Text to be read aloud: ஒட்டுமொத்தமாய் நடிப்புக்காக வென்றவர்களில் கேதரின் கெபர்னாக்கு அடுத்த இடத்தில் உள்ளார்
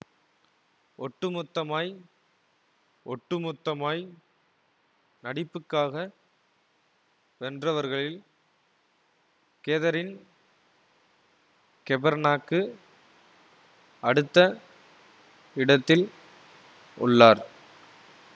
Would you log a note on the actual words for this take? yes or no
yes